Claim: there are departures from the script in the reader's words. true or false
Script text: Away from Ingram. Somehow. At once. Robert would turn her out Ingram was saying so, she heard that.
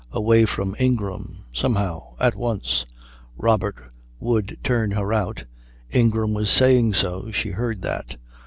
false